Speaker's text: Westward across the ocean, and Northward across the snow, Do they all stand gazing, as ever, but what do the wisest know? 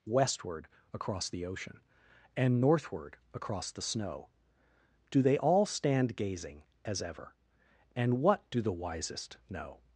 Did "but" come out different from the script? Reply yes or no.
yes